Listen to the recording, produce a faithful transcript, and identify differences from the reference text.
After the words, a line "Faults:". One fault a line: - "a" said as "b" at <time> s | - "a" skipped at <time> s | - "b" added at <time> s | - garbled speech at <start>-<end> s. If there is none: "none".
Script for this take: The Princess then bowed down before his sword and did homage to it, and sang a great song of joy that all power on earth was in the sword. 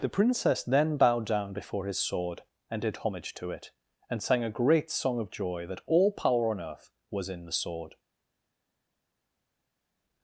The Princess then bowed down before his sword and did homage to it, and sang a great song of joy that all power on earth was in the sword.
Faults:
none